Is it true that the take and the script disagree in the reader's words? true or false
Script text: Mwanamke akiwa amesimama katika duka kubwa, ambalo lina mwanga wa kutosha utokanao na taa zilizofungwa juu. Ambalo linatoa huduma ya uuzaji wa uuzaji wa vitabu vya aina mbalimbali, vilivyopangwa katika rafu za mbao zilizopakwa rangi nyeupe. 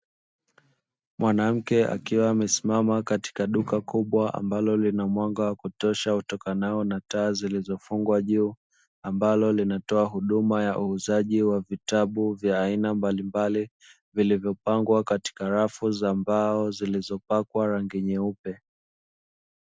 true